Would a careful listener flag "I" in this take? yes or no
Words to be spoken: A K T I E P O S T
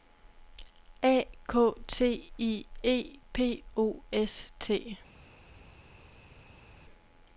no